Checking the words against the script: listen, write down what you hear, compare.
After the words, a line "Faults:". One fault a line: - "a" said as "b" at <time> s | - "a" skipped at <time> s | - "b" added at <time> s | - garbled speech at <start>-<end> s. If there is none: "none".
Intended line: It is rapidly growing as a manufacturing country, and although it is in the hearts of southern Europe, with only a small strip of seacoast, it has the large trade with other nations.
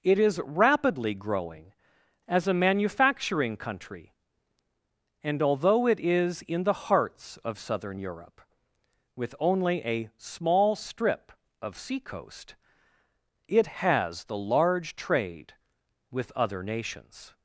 It is rapidly growing as a manufacturing country, and although it is in the hearts of southern Europe, with only a small strip of seacoast, it has the large trade with other nations.
Faults:
none